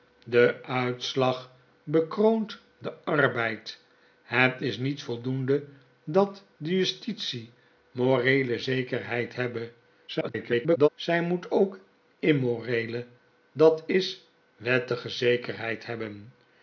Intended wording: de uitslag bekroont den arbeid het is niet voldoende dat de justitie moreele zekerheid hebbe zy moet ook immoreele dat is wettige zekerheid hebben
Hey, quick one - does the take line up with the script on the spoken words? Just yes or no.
no